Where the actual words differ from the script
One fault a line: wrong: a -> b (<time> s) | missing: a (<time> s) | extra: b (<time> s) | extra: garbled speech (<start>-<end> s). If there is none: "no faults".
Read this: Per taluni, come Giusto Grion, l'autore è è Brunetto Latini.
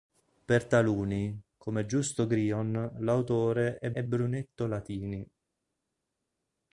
no faults